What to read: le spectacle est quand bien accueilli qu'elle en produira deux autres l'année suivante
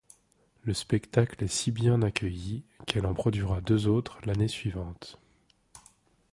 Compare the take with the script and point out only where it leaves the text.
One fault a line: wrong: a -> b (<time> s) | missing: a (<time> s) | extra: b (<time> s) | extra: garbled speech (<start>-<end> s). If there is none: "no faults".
wrong: quand -> si (1.5 s)